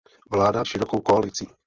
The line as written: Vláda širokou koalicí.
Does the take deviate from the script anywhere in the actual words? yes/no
no